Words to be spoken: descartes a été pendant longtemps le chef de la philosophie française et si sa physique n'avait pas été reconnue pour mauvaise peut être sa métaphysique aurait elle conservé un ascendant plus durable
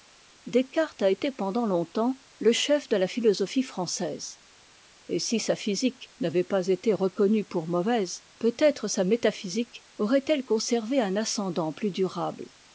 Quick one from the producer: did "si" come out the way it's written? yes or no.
yes